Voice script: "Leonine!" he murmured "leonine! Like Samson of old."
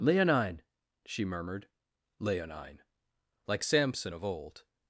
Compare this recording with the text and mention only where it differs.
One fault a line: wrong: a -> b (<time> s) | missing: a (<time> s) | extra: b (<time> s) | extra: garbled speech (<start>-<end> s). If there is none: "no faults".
wrong: he -> she (1.1 s)